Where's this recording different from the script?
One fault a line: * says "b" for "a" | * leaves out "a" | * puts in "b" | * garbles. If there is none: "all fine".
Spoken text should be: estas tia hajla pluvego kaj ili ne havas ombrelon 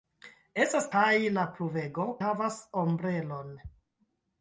* leaves out "tia"
* leaves out "kaj ili ne"